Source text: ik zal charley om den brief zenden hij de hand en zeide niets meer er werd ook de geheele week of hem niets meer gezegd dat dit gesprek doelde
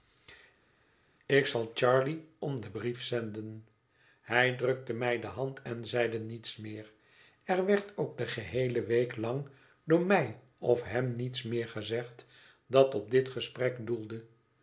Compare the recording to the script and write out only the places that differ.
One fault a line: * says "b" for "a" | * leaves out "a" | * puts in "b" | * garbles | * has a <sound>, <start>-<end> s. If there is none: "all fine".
* puts in "drukte mij"
* puts in "lang door mij"
* puts in "op"